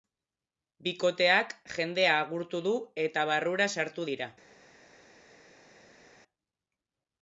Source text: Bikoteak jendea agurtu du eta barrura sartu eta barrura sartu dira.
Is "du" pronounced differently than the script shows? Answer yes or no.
no